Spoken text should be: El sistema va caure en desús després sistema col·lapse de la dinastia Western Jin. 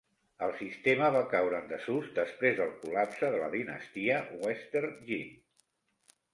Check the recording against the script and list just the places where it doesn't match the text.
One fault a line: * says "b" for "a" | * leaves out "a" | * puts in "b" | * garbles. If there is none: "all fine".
* says "del" for "sistema"